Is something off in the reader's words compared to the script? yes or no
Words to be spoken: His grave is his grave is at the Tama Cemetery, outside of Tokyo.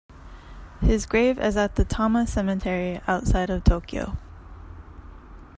yes